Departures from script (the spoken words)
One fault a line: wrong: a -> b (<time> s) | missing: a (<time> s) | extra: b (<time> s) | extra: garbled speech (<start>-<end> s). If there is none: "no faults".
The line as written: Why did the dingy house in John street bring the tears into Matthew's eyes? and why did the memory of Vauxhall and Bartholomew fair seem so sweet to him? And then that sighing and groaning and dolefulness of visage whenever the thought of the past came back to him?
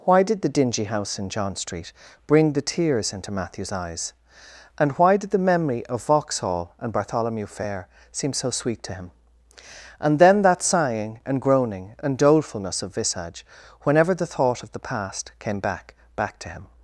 extra: back (16.2 s)